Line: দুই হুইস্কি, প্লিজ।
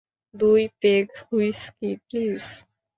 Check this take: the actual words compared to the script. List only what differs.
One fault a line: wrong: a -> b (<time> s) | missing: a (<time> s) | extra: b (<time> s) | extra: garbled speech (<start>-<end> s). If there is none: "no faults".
extra: পেগ (0.8 s)